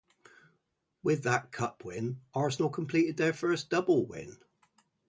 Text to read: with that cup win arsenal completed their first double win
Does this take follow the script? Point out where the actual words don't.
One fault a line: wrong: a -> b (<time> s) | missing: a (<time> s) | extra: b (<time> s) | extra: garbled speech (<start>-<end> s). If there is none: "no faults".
no faults